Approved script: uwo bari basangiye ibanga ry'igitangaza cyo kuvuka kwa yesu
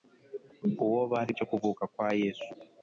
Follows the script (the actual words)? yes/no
no